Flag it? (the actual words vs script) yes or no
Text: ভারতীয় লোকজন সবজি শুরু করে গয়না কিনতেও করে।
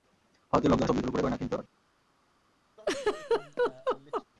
no